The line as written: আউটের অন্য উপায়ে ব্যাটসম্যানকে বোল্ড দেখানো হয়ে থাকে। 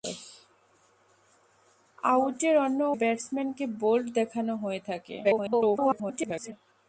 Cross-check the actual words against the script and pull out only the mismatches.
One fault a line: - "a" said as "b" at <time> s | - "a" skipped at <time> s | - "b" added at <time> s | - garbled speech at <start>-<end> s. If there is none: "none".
- "উপায়ে" skipped at 2.8 s
- garbled speech at 5.2-6.5 s